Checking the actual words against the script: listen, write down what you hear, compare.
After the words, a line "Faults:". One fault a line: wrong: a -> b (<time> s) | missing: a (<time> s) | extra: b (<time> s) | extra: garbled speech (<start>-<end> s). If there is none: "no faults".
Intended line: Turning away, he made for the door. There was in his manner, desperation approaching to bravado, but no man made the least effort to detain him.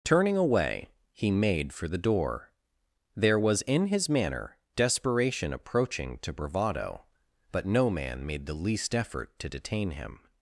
Turning away, he made for the door. There was in his manner, desperation approaching to bravado, but no man made the least effort to detain him.
Faults:
no faults